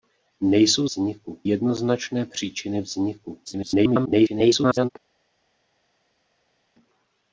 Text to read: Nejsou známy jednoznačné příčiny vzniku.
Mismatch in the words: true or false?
true